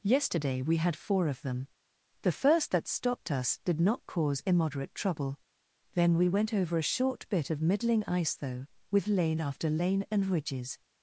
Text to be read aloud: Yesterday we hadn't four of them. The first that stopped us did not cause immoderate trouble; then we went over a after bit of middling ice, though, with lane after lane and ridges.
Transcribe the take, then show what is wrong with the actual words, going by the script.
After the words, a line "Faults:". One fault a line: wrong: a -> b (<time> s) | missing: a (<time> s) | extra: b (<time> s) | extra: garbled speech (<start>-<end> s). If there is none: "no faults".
Yesterday we had four of them. The first that stopped us did not cause immoderate trouble; then we went over a short bit of middling ice, though, with lane after lane and ridges.
Faults:
wrong: hadn't -> had (0.8 s)
wrong: after -> short (6.9 s)